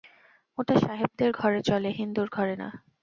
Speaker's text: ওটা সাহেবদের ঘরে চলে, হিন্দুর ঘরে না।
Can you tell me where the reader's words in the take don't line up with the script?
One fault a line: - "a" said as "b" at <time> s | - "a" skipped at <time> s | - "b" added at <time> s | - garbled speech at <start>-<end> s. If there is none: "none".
none